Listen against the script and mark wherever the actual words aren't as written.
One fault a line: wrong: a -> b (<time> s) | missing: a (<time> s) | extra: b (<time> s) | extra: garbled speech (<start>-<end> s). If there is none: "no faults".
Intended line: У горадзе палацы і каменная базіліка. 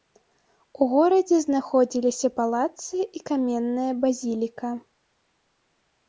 extra: знаходзіліся (1.4 s)